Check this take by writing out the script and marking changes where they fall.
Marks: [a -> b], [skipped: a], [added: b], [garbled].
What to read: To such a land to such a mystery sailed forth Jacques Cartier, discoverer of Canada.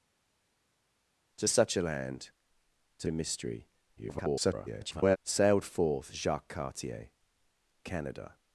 To such a land to [skipped: such] a mystery [garbled] sailed forth Jacques Cartier, [skipped: discoverer of] Canada.